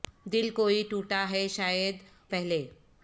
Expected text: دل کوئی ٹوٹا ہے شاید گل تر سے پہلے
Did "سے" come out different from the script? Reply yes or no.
yes